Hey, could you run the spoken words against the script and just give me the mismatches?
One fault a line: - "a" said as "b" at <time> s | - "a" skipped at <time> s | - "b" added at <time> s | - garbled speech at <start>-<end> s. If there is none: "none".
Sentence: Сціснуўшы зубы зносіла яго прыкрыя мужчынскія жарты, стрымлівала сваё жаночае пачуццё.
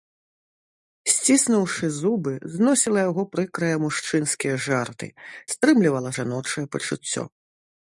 - "сваё" skipped at 6.1 s